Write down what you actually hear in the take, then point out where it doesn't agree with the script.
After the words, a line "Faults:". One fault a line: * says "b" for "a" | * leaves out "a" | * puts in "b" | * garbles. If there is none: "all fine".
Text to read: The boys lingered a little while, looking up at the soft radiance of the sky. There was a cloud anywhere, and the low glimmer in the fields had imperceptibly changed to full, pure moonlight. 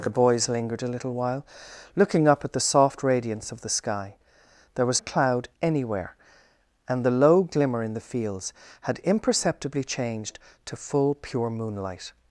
The boys lingered a little while, looking up at the soft radiance of the sky. There was a cloud anywhere, and the low glimmer in the fields had imperceptibly changed to full, pure moonlight.
Faults:
all fine